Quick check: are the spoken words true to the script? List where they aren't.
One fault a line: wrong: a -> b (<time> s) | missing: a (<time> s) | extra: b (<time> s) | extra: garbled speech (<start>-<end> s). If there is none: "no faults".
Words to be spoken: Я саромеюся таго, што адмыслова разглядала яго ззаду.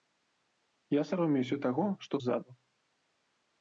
missing: адмыслова разглядала яго (2.1 s)